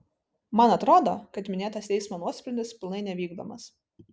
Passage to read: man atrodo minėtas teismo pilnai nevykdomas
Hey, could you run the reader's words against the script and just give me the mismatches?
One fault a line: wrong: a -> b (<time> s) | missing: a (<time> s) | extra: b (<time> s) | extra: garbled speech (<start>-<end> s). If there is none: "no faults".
extra: kad (1.4 s)
extra: nuosprendis (2.3 s)